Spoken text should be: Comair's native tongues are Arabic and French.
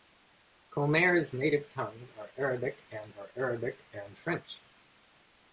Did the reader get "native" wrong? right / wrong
right